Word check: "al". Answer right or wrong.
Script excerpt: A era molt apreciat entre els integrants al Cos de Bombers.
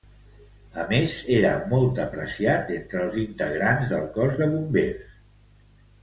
wrong